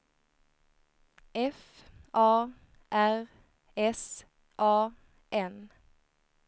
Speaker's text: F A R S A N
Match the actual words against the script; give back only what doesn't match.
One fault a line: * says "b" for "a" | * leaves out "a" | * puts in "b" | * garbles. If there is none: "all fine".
all fine